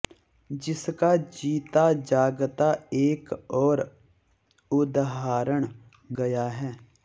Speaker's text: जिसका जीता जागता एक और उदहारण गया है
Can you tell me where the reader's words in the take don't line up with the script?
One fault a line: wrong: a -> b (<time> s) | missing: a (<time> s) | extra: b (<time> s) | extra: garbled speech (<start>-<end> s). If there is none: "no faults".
no faults